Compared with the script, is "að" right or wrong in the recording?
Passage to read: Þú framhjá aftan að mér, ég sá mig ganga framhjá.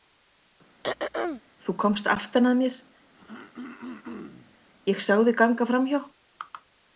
right